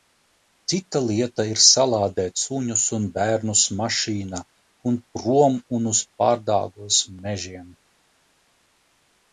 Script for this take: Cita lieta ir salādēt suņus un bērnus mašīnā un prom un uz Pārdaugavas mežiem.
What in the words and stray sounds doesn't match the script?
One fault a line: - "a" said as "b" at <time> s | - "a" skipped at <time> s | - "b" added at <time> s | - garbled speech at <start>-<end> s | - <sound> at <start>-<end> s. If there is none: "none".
none